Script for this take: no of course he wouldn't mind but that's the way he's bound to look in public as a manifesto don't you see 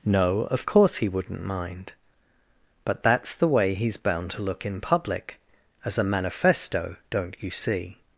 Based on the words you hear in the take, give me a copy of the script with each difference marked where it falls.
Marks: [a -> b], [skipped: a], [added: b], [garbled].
no of course he wouldn't mind but that's the way he's bound to look in public as a manifesto don't you see